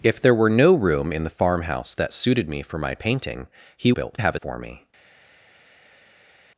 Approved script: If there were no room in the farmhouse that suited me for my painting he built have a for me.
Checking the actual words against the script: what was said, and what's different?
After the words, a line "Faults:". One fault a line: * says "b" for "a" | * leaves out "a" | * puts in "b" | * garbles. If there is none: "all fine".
If there were no room in the farmhouse that suited me for my painting he built have a for me.
Faults:
all fine